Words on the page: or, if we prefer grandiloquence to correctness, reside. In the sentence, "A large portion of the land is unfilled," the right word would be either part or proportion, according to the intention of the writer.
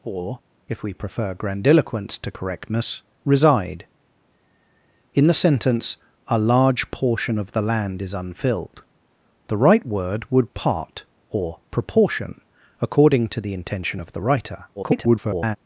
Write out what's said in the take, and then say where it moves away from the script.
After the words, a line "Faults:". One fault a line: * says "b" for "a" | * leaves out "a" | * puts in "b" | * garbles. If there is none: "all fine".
or, if we prefer grandiloquence to correctness, reside. In the sentence, "A large portion of the land is unfilled," the right word would part or proportion, according to the intention of the writer. [garbled]
Faults:
* leaves out "be either"
* garbles